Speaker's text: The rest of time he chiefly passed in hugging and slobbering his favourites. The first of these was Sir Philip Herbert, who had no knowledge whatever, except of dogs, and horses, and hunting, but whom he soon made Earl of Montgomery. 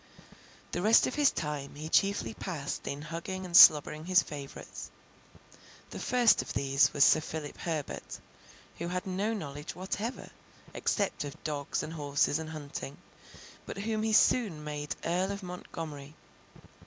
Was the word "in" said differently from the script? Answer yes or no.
no